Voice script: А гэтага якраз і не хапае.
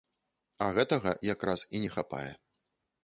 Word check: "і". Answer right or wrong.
right